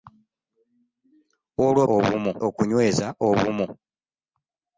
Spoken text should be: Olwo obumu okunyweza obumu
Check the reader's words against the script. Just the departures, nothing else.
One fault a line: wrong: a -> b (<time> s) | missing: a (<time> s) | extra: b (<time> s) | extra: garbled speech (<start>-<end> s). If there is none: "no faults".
no faults